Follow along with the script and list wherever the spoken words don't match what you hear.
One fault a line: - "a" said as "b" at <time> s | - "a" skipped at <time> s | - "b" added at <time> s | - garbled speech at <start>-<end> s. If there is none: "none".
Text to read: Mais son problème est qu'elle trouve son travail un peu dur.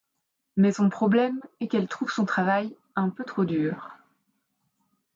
- "trop" added at 3.2 s